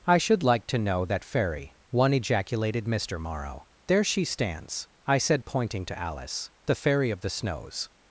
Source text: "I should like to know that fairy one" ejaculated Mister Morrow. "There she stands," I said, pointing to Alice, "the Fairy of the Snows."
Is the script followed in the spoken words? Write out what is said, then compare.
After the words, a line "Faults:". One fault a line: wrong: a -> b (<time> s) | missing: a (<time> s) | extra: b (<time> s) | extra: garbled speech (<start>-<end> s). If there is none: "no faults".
"I should like to know that fairy one" ejaculated Mister Morrow. "There she stands," I said, pointing to Alice, "the Fairy of the Snows."
Faults:
no faults